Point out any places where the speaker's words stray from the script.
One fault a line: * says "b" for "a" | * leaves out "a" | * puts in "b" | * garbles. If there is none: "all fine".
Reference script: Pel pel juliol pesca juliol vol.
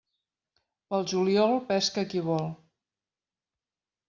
* leaves out "pel"
* says "qui" for "juliol"